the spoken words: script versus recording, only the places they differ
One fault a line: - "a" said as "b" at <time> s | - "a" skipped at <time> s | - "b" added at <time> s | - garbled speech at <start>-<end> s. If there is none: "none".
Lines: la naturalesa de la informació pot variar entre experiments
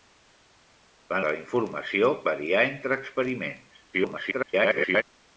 - "naturalesa" skipped at 1.2 s
- "pot" skipped at 2.1 s
- garbled speech at 3.9-5.0 s